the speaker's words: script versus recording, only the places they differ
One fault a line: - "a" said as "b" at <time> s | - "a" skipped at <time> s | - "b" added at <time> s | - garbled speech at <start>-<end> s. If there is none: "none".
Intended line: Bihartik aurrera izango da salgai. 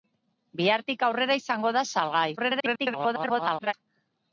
- garbled speech at 2.4-3.7 s